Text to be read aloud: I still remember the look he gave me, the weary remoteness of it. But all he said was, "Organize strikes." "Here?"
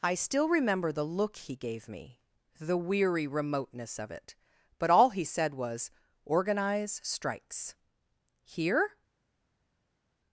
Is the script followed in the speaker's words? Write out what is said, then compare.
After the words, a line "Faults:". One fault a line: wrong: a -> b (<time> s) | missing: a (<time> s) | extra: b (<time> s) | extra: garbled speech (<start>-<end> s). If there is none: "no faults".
I still remember the look he gave me, the weary remoteness of it. But all he said was, "Organize strikes." "Here?"
Faults:
no faults